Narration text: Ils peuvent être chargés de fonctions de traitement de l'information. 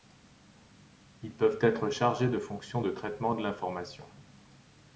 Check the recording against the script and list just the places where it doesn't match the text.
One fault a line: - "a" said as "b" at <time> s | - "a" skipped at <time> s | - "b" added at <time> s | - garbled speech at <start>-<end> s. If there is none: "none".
none